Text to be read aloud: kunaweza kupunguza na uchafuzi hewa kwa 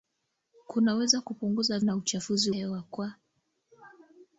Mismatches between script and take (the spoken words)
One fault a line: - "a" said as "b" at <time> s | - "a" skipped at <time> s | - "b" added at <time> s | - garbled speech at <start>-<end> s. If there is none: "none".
none